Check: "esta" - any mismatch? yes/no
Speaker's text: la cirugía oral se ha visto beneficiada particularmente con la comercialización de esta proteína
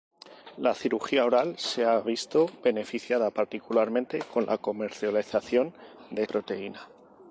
yes